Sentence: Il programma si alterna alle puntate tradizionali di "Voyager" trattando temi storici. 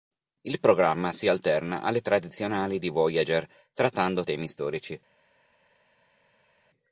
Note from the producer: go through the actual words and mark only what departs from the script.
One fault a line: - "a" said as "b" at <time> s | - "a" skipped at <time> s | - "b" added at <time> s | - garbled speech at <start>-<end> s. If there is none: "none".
- "puntate" skipped at 2.0 s